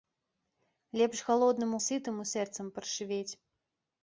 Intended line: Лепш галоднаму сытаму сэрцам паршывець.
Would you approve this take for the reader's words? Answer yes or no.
yes